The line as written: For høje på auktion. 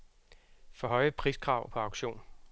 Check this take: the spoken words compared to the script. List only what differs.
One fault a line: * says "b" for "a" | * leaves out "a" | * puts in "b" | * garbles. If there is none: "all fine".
* puts in "priskrav"